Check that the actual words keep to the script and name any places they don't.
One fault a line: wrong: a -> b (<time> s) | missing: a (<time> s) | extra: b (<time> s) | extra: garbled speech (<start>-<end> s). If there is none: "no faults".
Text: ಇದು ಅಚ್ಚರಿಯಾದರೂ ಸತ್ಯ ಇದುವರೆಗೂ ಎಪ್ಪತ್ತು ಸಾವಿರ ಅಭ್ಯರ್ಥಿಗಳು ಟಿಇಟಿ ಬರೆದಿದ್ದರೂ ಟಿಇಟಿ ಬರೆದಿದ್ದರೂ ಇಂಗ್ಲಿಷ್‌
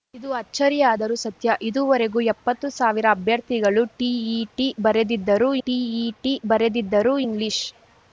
no faults